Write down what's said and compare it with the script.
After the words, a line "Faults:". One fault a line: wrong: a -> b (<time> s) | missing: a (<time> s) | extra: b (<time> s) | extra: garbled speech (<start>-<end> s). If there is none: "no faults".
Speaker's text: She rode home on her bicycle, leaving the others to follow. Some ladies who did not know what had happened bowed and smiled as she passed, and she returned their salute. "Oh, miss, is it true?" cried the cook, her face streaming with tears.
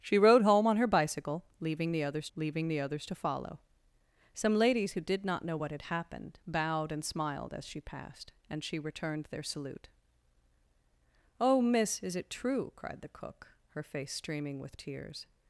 She rode home on her bicycle, leaving the others leaving the others to follow. Some ladies who did not know what had happened bowed and smiled as she passed, and she returned their salute. "Oh, miss, is it true?" cried the cook, her face streaming with tears.
Faults:
extra: leaving the others (2.3 s)